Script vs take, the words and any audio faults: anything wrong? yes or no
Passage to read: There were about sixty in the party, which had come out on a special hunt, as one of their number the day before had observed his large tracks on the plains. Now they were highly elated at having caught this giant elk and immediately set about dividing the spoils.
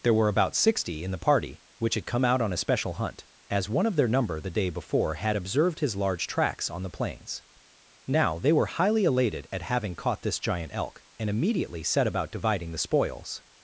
no